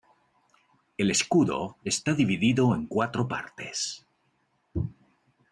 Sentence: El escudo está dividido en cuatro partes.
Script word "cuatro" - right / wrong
right